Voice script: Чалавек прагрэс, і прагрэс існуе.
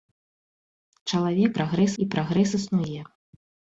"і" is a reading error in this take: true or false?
false